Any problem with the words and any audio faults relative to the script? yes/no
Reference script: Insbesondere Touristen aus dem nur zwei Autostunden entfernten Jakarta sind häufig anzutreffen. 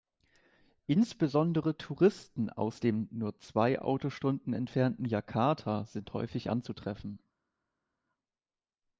no